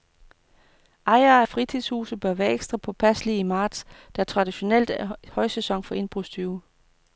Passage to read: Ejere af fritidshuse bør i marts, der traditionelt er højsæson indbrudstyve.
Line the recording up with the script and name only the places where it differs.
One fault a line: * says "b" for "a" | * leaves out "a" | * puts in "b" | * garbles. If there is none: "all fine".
* puts in "være ekstra påpasselige"
* puts in "for"